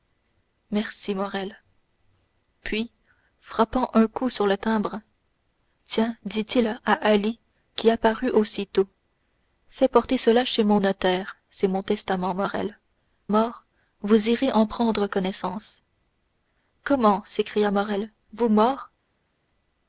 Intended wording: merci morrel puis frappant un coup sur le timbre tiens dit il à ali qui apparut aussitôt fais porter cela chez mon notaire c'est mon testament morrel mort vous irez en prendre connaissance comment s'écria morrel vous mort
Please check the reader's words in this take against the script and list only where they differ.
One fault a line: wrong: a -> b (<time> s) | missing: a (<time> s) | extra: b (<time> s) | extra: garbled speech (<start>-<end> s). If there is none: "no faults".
no faults